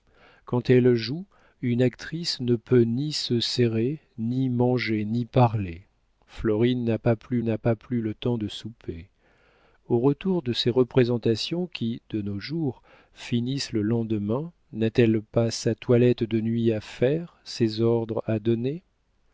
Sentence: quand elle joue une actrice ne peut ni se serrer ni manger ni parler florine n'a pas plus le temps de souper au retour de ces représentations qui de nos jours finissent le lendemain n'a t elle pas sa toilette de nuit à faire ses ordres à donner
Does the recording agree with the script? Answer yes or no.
no